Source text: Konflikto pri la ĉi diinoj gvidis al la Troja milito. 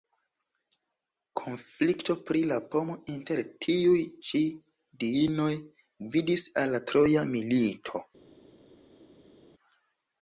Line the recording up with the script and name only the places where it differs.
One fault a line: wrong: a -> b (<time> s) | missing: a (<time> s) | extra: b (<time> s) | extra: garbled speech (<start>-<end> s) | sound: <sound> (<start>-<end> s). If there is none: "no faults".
extra: pomo inter tiuj (2.7 s)